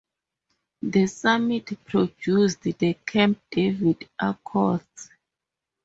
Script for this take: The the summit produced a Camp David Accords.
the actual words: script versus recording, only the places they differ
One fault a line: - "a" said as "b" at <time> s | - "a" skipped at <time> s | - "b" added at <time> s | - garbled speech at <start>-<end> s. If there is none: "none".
- "the" skipped at 1.1 s
- "a" said as "the" at 2.6 s